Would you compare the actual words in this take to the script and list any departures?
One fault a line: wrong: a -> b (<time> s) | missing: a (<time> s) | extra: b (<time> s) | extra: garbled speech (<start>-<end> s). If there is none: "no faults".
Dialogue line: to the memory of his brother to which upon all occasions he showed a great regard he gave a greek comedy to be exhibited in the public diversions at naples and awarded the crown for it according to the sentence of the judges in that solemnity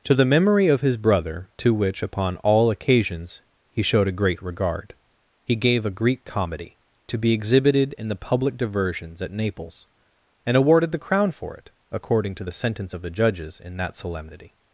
no faults